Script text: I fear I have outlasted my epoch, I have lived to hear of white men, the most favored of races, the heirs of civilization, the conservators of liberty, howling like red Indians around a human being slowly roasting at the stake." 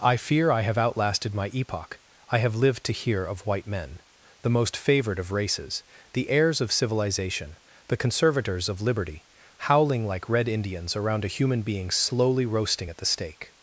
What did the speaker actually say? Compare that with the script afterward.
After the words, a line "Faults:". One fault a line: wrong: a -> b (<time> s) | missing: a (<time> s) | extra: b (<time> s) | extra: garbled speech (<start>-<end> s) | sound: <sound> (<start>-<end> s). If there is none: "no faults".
I fear I have outlasted my epoch, I have lived to hear of white men, the most favored of races, the heirs of civilization, the conservators of liberty, howling like red Indians around a human being slowly roasting at the stake."
Faults:
no faults